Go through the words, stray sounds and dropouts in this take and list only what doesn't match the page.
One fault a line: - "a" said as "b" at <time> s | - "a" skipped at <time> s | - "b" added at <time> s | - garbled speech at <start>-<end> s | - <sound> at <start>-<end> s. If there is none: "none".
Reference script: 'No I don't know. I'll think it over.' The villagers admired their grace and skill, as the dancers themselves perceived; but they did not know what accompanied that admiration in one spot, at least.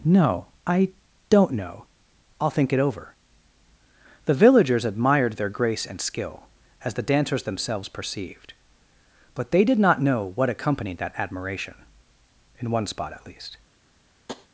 - tap at 14.3-14.5 s